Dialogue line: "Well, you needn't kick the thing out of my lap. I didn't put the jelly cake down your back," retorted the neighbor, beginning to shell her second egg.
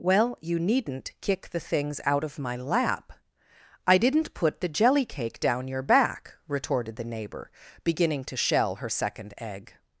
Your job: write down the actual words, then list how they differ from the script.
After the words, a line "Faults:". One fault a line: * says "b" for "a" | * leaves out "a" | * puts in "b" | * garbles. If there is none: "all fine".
"Well, you needn't kick the things out of my lap. I didn't put the jelly cake down your back," retorted the neighbor, beginning to shell her second egg.
Faults:
* says "things" for "thing"